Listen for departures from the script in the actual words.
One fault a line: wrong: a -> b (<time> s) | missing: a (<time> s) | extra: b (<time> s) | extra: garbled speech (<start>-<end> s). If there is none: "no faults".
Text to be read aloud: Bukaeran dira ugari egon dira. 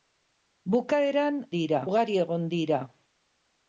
no faults